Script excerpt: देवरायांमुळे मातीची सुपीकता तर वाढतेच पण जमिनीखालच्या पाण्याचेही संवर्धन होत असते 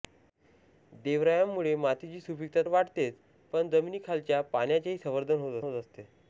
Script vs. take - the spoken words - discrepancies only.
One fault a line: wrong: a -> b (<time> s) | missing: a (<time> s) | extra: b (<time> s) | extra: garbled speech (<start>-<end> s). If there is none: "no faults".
missing: तर (2.6 s)
extra: होत (5.6 s)